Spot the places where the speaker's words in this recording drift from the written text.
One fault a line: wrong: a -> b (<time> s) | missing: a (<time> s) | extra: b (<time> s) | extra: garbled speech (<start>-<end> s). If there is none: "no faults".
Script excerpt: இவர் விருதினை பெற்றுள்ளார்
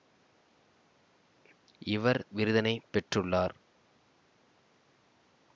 no faults